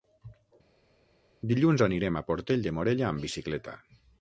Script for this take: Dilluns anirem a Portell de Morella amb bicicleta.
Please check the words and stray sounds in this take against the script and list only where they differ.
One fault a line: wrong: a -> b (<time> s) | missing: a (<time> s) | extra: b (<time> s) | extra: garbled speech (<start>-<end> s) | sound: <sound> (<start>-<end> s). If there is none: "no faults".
no faults